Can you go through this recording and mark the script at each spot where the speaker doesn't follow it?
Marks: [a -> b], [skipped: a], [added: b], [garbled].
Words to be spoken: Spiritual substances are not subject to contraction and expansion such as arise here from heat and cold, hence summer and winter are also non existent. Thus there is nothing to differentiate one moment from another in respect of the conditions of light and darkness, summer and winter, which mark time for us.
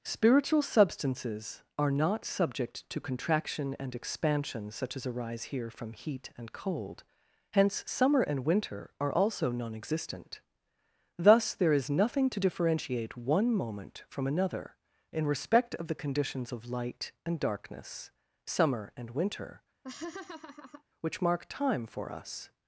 Spiritual substances are not subject to contraction and expansion such as arise here from heat and cold, hence summer and winter are also non existent. Thus there is nothing to differentiate one moment from another in respect of the conditions of light and darkness, summer and winter, which mark time for us.